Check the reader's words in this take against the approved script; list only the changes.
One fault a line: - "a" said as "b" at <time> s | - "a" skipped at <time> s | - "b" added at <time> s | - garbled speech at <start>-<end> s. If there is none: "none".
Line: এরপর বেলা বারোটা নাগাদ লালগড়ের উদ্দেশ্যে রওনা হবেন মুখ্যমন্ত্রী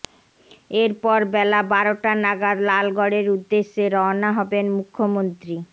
none